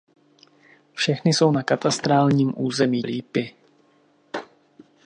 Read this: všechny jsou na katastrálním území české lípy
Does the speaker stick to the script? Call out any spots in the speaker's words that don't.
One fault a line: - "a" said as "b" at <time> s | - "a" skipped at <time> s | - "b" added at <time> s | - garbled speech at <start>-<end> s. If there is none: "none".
- "české" skipped at 3.0 s